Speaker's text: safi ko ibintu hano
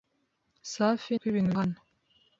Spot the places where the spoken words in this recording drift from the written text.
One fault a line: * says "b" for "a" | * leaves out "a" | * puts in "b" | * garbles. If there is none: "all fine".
all fine